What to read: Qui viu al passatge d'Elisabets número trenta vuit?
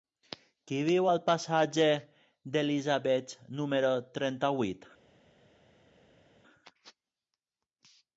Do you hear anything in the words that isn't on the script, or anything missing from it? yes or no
no